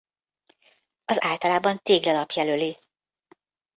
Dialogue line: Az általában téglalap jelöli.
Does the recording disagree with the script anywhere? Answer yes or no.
no